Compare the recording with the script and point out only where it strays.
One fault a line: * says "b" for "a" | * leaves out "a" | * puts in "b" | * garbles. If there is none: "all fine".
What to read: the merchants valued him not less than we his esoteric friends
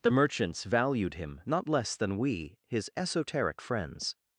all fine